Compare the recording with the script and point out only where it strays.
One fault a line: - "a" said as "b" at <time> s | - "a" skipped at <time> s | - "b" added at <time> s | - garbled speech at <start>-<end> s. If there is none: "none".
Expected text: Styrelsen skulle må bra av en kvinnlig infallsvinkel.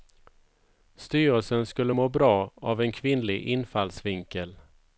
none